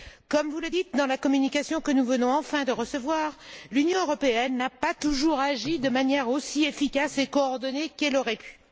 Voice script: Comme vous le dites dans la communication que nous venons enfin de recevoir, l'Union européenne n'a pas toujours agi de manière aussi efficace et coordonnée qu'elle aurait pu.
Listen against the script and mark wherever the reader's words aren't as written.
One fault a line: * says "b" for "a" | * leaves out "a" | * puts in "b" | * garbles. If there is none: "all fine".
all fine